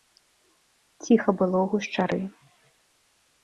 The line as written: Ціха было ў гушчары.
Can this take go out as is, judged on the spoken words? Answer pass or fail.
pass